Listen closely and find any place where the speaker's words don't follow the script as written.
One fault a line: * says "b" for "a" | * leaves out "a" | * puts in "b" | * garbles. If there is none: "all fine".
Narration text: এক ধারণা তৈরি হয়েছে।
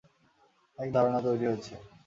all fine